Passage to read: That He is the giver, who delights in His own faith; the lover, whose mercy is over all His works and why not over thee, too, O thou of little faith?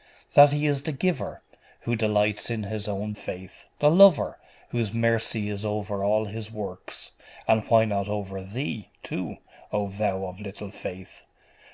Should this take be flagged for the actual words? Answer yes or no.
no